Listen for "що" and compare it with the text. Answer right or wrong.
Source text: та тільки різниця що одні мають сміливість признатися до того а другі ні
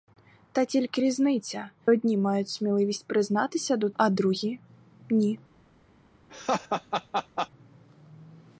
wrong